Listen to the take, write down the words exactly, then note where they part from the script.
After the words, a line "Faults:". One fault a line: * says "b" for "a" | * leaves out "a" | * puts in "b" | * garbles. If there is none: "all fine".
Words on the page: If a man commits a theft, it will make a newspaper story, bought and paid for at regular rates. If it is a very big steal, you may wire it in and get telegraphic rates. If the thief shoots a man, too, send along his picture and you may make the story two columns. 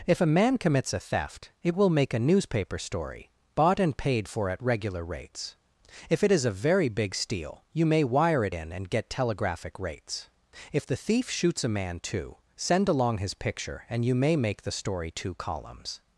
If a man commits a theft, it will make a newspaper story, bought and paid for at regular rates. If it is a very big steal, you may wire it in and get telegraphic rates. If the thief shoots a man, too, send along his picture and you may make the story two columns.
Faults:
all fine